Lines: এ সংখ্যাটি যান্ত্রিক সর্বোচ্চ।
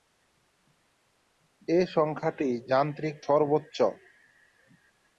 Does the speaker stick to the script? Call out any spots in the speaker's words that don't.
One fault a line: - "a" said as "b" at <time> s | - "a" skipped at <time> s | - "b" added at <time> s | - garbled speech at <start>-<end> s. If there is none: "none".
none